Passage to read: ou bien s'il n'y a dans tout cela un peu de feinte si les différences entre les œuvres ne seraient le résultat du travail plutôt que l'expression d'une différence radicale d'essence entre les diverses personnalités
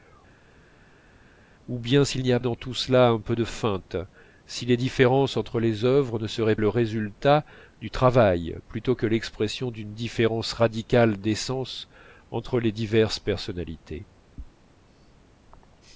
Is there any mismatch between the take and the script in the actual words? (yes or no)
no